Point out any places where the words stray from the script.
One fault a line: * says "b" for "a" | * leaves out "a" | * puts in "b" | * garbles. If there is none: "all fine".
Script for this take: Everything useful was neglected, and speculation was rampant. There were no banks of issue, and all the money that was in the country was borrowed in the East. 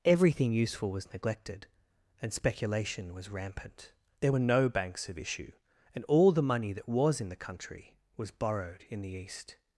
all fine